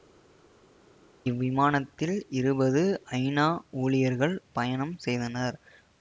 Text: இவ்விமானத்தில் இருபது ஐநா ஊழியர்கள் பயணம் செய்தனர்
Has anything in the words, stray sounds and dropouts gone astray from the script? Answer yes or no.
no